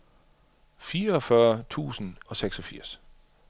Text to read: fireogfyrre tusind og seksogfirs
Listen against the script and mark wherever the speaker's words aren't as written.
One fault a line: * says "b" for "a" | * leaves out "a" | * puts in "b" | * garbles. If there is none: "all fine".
all fine